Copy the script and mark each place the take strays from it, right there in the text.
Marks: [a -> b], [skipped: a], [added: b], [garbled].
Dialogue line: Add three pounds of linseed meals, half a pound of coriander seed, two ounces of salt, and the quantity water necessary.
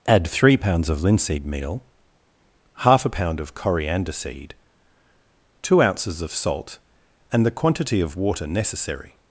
Add three pounds of linseed [meals, -> meal] half a pound of coriander seed, two ounces of salt, and the quantity [added: of] water necessary.